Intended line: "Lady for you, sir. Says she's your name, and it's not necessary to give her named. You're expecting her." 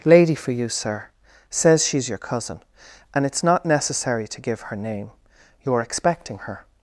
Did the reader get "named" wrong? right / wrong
wrong